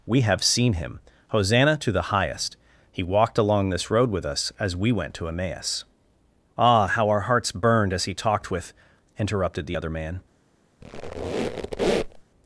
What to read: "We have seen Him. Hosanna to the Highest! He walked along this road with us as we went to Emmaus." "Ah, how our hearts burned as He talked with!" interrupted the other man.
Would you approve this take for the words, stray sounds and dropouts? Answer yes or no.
no